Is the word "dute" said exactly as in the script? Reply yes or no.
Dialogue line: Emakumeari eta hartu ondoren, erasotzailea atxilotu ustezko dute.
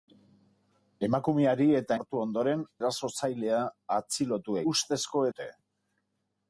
yes